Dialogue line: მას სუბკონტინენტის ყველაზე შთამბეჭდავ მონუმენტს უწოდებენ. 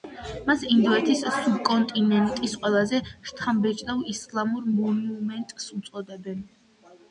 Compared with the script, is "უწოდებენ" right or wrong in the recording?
right